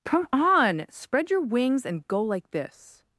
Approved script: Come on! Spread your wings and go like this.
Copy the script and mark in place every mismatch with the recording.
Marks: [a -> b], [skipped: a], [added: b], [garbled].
Come on! Spread your wings and go like this.